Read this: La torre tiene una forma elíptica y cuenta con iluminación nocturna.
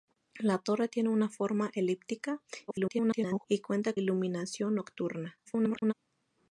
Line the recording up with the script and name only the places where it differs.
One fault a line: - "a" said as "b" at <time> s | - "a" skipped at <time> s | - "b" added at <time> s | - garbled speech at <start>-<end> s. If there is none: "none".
- garbled speech at 2.7-3.5 s
- "con" skipped at 3.9 s
- garbled speech at 5.5-5.9 s